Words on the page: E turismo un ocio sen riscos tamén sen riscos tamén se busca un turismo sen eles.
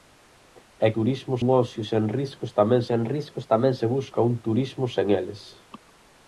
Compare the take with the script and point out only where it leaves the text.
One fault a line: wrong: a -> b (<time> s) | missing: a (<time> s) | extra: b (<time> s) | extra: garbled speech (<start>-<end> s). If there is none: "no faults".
no faults